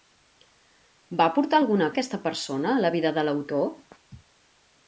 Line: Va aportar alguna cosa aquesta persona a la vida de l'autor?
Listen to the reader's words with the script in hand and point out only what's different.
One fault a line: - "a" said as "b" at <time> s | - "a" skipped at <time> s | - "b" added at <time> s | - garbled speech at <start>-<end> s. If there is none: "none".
- "cosa" skipped at 1.9 s